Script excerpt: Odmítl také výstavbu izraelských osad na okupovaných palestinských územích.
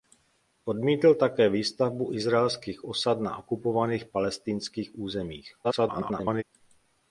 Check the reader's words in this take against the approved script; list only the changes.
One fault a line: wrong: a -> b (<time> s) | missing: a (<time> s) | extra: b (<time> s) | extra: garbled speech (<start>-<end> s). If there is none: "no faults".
extra: garbled speech (5.6-6.4 s)